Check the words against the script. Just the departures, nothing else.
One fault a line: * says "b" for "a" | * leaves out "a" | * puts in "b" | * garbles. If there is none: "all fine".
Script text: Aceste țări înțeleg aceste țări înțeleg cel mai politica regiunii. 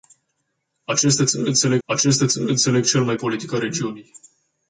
all fine